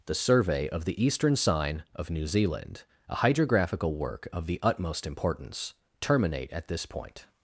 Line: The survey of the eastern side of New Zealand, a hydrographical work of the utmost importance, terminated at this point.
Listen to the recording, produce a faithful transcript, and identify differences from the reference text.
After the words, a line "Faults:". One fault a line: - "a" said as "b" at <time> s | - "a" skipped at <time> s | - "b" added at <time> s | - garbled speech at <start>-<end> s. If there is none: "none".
The survey of the eastern sign of New Zealand, a hydrographical work of the utmost importance, terminate at this point.
Faults:
- "side" said as "sign" at 1.4 s
- "terminated" said as "terminate" at 6.0 s